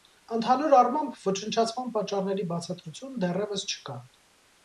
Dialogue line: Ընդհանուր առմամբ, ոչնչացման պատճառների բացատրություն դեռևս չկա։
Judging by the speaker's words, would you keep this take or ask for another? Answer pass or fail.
pass